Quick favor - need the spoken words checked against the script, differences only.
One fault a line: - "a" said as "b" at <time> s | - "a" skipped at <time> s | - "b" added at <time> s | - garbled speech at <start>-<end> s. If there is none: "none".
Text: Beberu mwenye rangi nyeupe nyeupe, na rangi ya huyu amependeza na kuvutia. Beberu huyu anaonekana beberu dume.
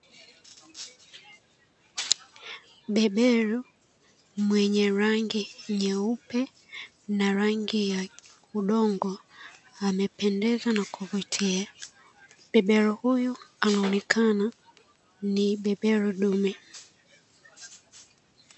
- "nyeupe" skipped at 6.4 s
- "huyu" said as "udongo" at 8.6 s
- "ni" added at 15.3 s